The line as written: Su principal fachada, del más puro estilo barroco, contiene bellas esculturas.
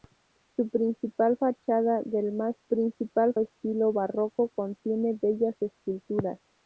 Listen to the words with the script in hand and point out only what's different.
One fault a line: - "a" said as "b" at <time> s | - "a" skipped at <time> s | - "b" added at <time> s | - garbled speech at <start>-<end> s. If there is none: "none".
- "puro" said as "principal" at 2.6 s